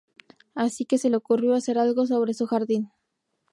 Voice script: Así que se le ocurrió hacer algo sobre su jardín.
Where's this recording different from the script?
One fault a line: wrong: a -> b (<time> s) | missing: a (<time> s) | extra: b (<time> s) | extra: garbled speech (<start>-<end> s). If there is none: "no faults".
no faults